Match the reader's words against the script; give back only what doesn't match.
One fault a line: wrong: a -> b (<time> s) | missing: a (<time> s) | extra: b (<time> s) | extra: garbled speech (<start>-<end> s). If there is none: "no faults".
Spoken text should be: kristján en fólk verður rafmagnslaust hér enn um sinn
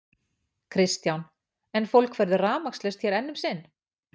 no faults